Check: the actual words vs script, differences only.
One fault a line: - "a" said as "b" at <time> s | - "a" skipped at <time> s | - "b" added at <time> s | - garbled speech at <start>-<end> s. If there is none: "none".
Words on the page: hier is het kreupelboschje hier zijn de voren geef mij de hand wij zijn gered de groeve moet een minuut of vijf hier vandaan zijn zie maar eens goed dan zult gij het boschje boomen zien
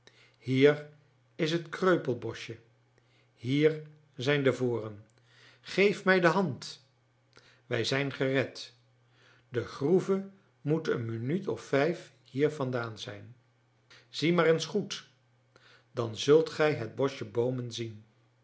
none